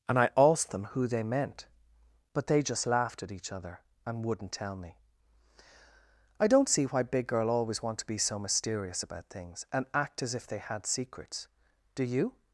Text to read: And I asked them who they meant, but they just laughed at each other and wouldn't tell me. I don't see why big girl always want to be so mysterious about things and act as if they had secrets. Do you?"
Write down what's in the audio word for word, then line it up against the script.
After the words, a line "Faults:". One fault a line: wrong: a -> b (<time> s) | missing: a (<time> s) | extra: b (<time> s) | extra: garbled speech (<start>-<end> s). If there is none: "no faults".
And I asked them who they meant, but they just laughed at each other and wouldn't tell me. I don't see why big girl always want to be so mysterious about things and act as if they had secrets. Do you?"
Faults:
no faults